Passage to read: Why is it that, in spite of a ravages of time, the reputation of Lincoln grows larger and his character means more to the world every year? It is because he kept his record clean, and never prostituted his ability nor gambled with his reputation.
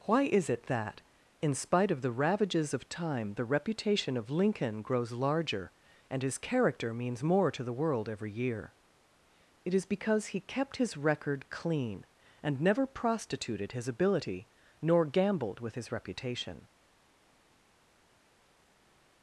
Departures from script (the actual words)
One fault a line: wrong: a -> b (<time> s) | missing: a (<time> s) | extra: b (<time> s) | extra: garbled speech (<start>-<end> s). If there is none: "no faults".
wrong: a -> the (2.0 s)